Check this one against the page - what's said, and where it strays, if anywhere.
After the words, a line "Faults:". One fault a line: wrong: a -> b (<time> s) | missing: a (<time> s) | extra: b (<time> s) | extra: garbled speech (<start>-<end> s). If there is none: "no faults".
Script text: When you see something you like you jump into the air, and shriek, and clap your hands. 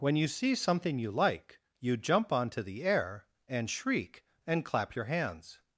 When you see something you like you jump onto the air, and shriek, and clap your hands.
Faults:
wrong: into -> onto (2.3 s)